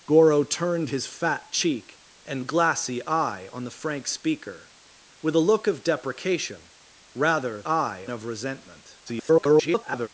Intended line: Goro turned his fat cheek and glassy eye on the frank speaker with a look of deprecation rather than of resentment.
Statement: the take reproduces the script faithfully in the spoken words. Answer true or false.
false